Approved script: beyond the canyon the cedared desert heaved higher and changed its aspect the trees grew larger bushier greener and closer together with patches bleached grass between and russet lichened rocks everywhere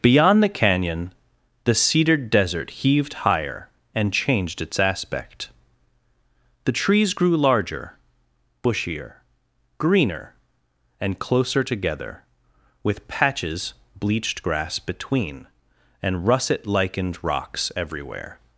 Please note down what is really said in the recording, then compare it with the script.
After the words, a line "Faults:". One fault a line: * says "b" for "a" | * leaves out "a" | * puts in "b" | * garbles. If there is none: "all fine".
beyond the canyon the cedared desert heaved higher and changed its aspect the trees grew larger bushier greener and closer together with patches bleached grass between and russet lichened rocks everywhere
Faults:
all fine